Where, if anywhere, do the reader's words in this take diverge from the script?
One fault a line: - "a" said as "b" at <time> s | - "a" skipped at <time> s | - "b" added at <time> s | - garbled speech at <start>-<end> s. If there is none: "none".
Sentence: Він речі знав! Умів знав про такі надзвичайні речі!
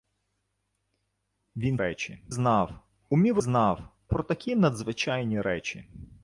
none